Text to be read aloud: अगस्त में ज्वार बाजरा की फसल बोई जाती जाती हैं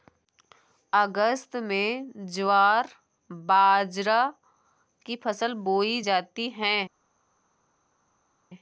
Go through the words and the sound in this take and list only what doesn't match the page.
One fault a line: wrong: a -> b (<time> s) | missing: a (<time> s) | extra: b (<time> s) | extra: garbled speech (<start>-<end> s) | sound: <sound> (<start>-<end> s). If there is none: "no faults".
missing: जाती (6.5 s)